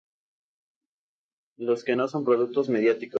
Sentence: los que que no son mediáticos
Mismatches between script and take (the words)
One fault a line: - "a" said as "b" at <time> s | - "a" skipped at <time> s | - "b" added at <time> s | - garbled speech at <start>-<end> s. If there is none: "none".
- "que" skipped at 2.0 s
- "productos" added at 2.2 s